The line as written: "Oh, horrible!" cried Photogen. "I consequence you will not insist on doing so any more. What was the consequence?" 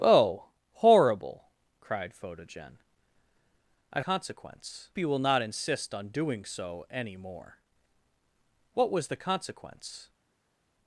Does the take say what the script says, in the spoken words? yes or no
yes